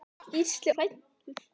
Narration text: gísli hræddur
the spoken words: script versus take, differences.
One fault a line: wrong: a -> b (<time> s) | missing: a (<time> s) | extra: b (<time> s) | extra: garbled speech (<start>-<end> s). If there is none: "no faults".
no faults